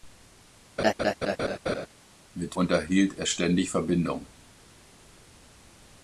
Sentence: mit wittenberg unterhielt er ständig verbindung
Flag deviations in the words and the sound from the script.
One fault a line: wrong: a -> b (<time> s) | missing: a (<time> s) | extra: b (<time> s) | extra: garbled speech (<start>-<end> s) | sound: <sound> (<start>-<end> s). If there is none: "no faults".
sound: laugh (0.8-1.9 s)
missing: wittenberg (2.6 s)